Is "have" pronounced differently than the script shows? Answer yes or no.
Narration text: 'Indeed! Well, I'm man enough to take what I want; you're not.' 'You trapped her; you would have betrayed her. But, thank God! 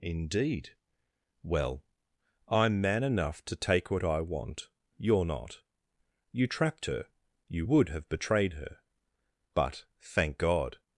no